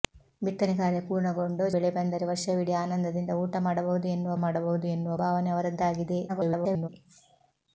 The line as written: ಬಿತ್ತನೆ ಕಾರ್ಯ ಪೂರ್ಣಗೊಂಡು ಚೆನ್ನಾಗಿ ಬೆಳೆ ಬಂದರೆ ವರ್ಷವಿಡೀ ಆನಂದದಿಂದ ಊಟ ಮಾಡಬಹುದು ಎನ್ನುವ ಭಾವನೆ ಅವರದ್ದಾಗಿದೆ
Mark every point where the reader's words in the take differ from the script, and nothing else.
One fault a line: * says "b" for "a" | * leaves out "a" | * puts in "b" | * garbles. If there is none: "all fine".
* leaves out "ಚೆನ್ನಾಗಿ"
* puts in "ಮಾಡಬಹುದು ಎನ್ನುವ"
* garbles